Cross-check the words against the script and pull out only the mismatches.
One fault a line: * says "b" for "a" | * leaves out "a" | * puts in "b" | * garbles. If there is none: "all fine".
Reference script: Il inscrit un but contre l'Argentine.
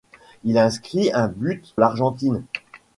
* leaves out "contre"